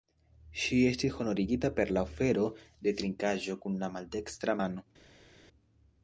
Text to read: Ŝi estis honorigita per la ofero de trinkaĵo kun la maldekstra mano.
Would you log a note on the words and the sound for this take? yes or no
no